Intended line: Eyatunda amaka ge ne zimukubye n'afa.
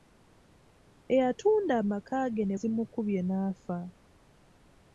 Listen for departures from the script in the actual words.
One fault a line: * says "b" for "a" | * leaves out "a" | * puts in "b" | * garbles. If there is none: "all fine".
all fine